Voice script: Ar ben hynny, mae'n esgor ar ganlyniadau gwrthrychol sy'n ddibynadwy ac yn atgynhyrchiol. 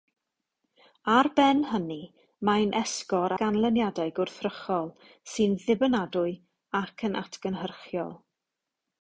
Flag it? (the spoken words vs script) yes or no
yes